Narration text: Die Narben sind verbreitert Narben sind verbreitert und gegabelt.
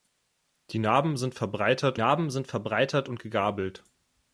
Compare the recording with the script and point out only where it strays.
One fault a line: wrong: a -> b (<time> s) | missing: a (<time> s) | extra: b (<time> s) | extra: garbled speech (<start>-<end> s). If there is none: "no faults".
no faults